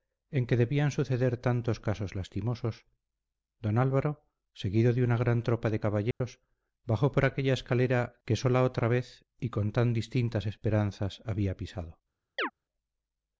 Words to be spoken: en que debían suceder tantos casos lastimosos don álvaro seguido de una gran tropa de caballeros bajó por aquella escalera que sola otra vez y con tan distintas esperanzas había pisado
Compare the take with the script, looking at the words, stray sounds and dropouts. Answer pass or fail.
fail